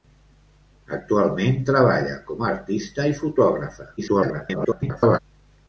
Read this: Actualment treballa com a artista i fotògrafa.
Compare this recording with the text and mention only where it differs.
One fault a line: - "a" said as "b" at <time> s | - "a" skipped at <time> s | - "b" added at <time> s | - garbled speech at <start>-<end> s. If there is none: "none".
- garbled speech at 4.0-5.2 s